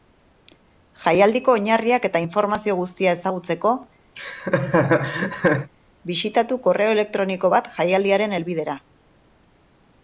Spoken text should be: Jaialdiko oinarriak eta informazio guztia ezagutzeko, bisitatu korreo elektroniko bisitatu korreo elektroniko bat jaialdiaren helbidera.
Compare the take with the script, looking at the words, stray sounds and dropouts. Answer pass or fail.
fail